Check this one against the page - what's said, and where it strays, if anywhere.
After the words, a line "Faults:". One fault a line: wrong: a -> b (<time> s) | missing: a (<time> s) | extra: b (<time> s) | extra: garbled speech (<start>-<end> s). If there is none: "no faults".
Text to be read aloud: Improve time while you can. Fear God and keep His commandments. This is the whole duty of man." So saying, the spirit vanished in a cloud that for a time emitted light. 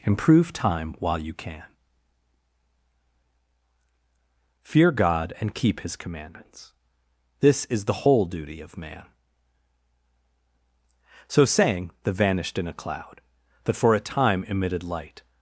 Improve time while you can. Fear God and keep His commandments. This is the whole duty of man." So saying, the vanished in a cloud that for a time emitted light.
Faults:
missing: spirit (12.1 s)